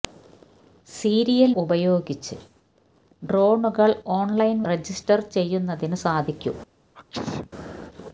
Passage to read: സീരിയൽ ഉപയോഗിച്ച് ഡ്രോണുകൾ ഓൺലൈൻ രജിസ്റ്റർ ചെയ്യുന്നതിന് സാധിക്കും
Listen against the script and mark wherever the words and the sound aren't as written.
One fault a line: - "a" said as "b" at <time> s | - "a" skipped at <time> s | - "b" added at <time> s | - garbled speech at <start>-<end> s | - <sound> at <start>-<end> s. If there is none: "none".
- sneeze at 6.9-7.5 s